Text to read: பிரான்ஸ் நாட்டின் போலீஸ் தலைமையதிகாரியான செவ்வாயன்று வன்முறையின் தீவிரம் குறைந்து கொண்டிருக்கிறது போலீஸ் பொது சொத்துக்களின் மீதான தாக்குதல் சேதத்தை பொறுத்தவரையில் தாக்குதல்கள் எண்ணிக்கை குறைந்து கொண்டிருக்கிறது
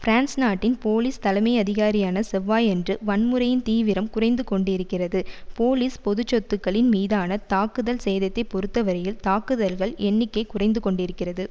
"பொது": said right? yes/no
yes